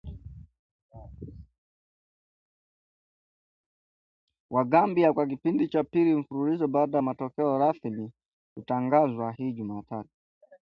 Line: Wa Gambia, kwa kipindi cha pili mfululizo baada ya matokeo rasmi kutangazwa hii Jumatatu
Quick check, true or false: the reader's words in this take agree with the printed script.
true